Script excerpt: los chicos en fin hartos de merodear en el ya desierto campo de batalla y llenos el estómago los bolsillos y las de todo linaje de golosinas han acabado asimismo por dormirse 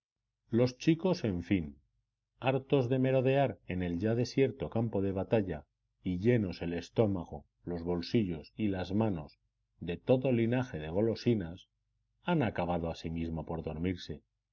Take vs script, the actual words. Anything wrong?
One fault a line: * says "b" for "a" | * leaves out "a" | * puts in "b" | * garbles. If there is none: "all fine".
* puts in "manos"